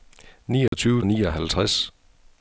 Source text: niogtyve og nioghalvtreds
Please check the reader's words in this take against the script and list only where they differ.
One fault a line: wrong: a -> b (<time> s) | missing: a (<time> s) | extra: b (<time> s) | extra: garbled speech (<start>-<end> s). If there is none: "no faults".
no faults